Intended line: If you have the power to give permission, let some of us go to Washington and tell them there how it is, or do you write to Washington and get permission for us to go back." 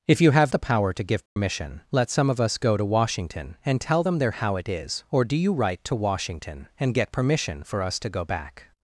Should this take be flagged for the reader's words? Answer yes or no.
no